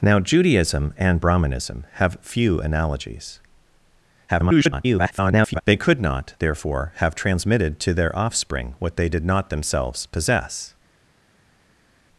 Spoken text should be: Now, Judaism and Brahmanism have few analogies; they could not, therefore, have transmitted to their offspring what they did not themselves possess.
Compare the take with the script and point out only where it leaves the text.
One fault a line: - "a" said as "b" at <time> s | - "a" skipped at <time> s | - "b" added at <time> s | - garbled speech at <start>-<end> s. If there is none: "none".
- garbled speech at 4.3-5.6 s